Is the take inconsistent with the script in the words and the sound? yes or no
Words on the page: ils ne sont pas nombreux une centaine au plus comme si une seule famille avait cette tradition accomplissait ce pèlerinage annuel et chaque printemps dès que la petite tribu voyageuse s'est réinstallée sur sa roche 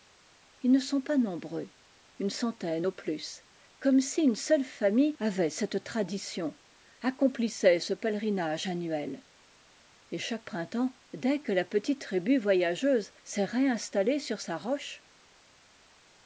no